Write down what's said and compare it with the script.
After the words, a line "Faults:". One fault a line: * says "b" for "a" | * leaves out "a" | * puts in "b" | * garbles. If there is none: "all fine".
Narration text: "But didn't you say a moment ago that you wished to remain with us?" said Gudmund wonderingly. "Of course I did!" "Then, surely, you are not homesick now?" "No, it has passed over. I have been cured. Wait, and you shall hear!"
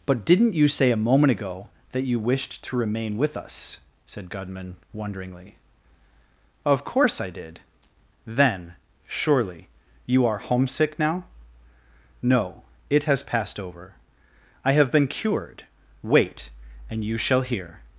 "But didn't you say a moment ago that you wished to remain with us?" said Gudmund wonderingly. "Of course I did!" "Then, surely, you are homesick now?" "No, it has passed over. I have been cured. Wait, and you shall hear!"
Faults:
* leaves out "not"